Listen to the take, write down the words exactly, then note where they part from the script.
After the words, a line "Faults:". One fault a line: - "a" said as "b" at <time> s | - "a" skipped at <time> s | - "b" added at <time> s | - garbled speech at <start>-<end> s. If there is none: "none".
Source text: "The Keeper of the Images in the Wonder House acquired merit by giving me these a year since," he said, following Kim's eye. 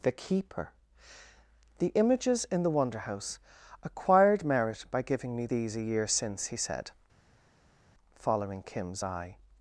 "The Keeper the Images in the Wonder House acquired merit by giving me these a year since," he said, following Kim's eye.
Faults:
- "of" skipped at 0.7 s